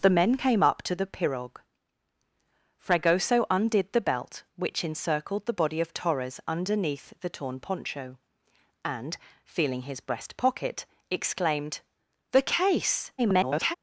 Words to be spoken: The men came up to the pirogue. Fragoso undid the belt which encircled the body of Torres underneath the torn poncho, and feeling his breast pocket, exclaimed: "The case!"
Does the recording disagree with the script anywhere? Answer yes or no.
yes